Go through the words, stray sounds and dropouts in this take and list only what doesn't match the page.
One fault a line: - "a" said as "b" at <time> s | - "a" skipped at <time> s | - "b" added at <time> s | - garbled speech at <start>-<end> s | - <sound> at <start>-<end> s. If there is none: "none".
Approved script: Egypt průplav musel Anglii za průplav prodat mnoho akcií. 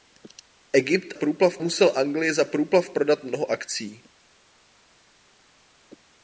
none